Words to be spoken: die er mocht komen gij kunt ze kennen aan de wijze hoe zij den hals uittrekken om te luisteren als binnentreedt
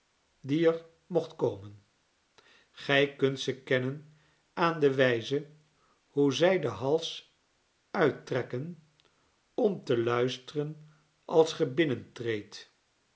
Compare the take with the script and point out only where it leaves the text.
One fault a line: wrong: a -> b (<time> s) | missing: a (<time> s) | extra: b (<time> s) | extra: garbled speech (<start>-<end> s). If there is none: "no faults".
extra: ge (11.5 s)